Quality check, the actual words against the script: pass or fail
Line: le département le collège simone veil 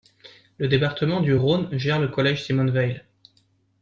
fail